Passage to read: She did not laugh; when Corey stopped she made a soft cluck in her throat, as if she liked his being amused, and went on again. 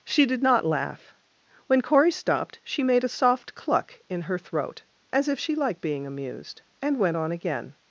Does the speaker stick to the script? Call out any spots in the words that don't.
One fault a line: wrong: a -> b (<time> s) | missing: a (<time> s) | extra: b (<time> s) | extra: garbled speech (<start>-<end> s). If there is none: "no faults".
missing: his (5.8 s)